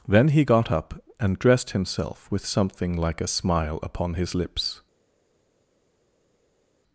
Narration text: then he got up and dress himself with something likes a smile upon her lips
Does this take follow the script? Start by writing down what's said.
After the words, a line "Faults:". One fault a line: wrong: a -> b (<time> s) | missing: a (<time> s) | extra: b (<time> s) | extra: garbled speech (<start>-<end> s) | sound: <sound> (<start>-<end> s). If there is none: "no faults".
then he got up and dressed himself with something like a smile upon his lips
Faults:
wrong: dress -> dressed (1.4 s)
wrong: likes -> like (3.0 s)
wrong: her -> his (4.1 s)